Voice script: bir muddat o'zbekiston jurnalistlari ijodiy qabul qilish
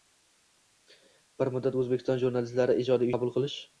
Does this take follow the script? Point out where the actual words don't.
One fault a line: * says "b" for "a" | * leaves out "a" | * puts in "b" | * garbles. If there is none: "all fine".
all fine